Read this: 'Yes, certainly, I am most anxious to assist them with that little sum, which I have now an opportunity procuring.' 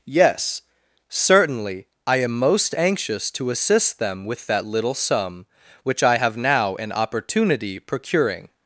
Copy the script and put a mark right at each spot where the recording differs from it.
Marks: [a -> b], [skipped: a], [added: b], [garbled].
'Yes, certainly, I am most anxious to assist them with that little sum, which I have now an opportunity procuring.'